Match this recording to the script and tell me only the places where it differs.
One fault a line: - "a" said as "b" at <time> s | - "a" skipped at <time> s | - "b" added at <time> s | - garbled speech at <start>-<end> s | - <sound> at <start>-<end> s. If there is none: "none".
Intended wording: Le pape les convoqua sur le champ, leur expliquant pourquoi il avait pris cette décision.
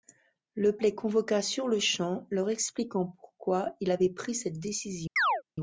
- "pape" skipped at 0.8 s
- chirp at 5.2-5.4 s